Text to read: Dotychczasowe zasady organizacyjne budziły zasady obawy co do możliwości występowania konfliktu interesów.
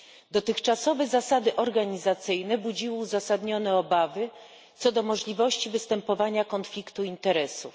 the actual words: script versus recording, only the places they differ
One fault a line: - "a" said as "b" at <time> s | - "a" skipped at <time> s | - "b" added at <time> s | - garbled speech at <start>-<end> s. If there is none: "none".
- "zasady" said as "uzasadnione" at 3.0 s